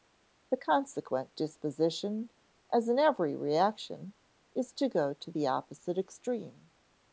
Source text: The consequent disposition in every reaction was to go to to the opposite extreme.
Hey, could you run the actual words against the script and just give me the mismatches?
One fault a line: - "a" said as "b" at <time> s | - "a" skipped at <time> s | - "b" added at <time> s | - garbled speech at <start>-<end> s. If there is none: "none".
- "as" added at 2.7 s
- "was" said as "is" at 4.5 s
- "to" skipped at 5.3 s